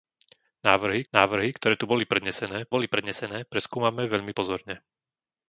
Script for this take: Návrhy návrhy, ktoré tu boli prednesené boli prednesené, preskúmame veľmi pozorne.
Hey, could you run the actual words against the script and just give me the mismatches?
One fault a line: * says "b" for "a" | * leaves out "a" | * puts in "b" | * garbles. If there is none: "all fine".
all fine